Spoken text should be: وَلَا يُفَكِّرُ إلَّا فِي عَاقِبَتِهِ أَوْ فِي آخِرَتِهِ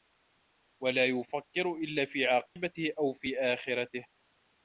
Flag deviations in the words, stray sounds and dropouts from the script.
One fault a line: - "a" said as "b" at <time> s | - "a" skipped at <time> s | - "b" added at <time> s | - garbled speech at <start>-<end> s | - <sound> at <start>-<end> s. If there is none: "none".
- dropout at 2.5-2.6 s